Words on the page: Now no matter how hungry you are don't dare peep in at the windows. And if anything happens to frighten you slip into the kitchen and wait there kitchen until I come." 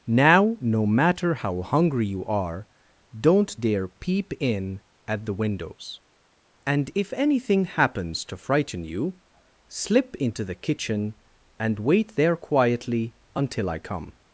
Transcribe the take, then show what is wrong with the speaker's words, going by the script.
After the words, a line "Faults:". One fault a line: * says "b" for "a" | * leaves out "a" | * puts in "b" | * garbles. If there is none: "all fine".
Now no matter how hungry you are don't dare peep in at the windows. And if anything happens to frighten you slip into the kitchen and wait there quietly until I come."
Faults:
* says "quietly" for "kitchen"